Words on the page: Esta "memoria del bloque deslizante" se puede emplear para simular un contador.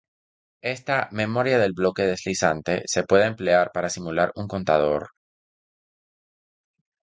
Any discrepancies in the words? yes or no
no